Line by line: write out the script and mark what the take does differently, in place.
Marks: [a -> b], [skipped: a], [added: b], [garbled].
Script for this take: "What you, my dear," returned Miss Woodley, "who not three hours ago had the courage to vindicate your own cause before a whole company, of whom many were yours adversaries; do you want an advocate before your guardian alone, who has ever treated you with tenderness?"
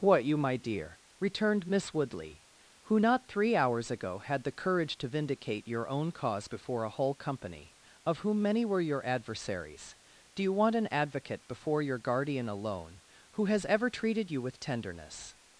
"What you, my dear," returned Miss Woodley, "who not three hours ago had the courage to vindicate your own cause before a whole company, of whom many were [yours -> your] adversaries; do you want an advocate before your guardian alone, who has ever treated you with tenderness?"